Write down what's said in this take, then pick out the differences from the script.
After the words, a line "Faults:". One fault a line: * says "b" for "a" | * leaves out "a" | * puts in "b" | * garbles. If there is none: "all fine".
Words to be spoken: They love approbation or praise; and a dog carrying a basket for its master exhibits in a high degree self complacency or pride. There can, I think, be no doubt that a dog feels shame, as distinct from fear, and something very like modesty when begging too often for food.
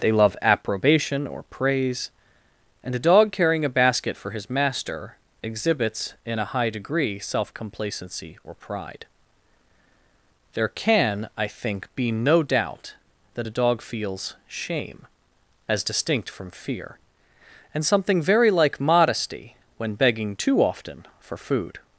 They love approbation or praise; and a dog carrying a basket for his master exhibits in a high degree self complacency or pride. There can, I think, be no doubt that a dog feels shame, as distinct from fear, and something very like modesty when begging too often for food.
Faults:
* says "his" for "its"